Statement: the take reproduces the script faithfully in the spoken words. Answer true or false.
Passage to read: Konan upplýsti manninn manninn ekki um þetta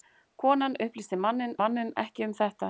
true